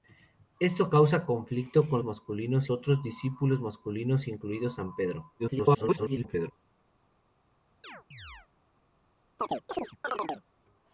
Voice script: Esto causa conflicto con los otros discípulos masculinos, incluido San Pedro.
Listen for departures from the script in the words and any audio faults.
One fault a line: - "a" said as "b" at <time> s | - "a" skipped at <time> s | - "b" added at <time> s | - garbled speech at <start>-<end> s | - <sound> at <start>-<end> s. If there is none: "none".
- "los" said as "masculinos" at 2.0 s
- garbled speech at 5.4-6.5 s
- chirp at 7.8-8.5 s
- chirp at 9.4-10.4 s